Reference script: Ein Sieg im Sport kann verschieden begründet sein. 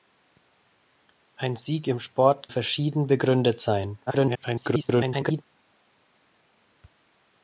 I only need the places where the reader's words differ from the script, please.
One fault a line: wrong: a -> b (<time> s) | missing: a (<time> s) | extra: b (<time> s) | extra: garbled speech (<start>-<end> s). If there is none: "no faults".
missing: kann (2.5 s)
extra: garbled speech (4.1-5.4 s)